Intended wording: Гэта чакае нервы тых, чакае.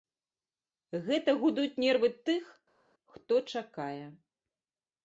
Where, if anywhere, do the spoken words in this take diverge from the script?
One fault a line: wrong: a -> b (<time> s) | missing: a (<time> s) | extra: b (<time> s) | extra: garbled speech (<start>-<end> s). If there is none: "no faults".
wrong: чакае -> гудуць (1.4 s)
extra: хто (3.1 s)